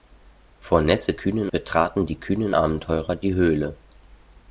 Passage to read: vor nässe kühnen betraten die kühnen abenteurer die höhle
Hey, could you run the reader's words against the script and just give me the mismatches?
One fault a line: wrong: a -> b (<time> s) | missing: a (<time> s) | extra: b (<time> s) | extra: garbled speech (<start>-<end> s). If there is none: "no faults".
no faults